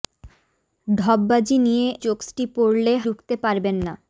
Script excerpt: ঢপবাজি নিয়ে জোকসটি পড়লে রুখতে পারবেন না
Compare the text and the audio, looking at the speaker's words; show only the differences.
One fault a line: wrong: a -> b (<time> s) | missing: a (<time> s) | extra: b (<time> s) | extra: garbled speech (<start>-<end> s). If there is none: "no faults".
no faults